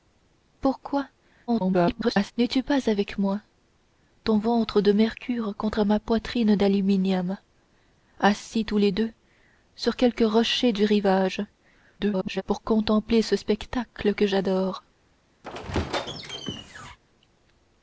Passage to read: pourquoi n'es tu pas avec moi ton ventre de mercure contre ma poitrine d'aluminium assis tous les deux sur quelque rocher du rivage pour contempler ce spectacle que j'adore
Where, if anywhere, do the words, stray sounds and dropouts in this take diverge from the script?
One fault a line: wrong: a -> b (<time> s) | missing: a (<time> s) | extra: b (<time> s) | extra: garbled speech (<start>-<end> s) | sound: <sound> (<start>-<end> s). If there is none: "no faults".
extra: garbled speech (1.5-2.3 s)
extra: garbled speech (12.0-12.4 s)
sound: squeak (15.4-17.0 s)